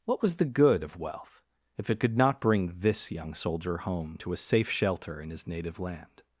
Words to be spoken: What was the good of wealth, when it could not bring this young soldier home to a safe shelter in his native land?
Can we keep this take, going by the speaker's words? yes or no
no